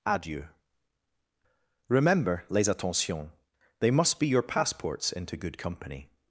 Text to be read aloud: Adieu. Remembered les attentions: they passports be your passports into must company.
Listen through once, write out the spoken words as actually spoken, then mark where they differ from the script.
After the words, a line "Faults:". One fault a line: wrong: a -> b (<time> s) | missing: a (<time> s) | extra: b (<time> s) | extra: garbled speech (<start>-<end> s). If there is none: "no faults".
Adieu. Remember les attentions: they must be your passports into good company.
Faults:
wrong: Remembered -> Remember (1.9 s)
wrong: passports -> must (3.9 s)
wrong: must -> good (5.4 s)